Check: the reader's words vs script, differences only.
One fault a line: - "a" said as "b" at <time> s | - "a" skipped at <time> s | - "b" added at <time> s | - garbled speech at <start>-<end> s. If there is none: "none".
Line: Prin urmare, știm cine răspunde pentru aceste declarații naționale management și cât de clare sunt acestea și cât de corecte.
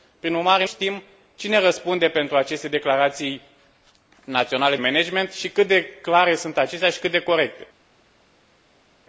none